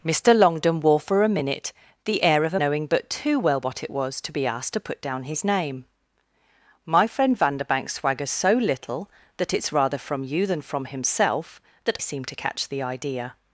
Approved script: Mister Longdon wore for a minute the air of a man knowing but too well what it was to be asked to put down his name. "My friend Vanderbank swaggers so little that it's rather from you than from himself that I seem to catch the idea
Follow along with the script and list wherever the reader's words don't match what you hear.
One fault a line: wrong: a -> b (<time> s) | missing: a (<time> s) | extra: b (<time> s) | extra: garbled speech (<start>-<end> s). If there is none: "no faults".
missing: man (2.6 s)
missing: I (12.0 s)